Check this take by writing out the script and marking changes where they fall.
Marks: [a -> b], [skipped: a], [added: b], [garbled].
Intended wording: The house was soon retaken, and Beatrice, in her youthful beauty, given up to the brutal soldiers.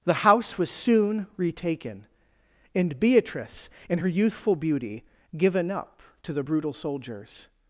The house was soon retaken, and Beatrice, in her youthful beauty, given up to the brutal soldiers.